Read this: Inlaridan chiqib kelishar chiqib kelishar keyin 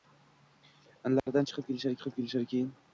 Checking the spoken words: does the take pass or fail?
pass